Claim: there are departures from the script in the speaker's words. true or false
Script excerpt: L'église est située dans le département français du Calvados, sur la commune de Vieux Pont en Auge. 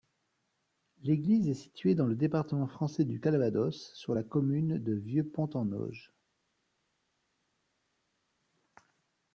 false